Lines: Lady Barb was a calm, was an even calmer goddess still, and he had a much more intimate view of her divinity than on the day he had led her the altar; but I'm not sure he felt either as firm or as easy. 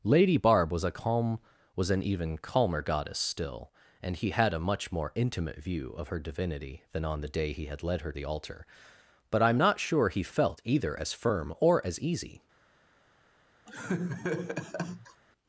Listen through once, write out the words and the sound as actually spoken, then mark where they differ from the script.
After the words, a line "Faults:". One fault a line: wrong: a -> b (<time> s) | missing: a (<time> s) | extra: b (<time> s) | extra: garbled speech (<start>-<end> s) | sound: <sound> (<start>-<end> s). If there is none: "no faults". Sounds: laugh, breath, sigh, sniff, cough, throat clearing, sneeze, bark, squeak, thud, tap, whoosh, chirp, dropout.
Lady Barb was a calm, was an even calmer goddess still, and he had a much more intimate view of her divinity than on the day he had led her the altar; but I'm not sure he felt either as firm or as easy.
Faults:
sound: laugh (13.7-15.2 s)